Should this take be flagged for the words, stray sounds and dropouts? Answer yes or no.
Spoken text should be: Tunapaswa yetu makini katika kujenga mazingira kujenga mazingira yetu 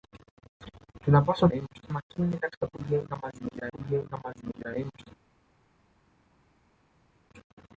no